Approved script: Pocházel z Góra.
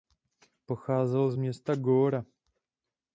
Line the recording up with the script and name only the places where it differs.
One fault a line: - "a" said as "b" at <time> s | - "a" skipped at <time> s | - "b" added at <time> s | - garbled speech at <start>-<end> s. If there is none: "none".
- "města" added at 1.4 s